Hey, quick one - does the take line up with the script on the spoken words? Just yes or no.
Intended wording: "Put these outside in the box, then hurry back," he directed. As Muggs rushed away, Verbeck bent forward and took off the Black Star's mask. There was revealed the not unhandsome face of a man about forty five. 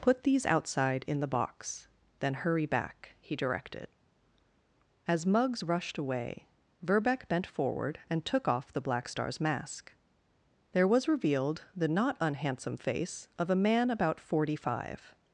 yes